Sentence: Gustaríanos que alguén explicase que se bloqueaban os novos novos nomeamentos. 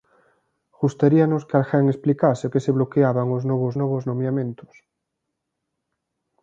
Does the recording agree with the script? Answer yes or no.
yes